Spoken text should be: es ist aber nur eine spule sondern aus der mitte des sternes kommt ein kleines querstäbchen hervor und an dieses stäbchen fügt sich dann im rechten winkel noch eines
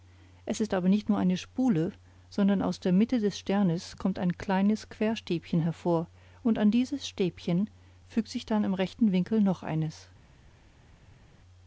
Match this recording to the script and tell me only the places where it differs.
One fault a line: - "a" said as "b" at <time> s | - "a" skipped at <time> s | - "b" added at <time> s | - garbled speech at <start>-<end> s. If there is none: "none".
- "nicht" added at 0.9 s